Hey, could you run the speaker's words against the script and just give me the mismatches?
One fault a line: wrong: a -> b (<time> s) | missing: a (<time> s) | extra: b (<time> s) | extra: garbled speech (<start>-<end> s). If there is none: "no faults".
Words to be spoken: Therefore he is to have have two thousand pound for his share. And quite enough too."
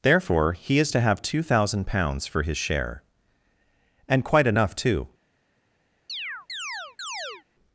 missing: have (1.2 s)
wrong: pound -> pounds (1.9 s)